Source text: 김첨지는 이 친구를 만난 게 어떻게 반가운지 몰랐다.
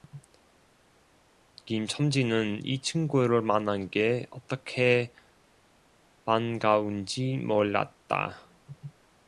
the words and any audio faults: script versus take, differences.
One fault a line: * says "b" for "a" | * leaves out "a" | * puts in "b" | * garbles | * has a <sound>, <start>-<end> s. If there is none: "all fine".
all fine